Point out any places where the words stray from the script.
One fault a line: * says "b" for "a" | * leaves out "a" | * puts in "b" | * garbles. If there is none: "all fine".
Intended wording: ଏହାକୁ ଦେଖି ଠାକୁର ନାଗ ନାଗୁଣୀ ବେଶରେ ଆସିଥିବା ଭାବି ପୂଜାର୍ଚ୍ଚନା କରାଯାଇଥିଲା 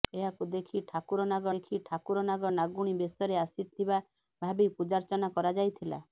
* puts in "ଦେଖି ଠାକୁର ନାଗ"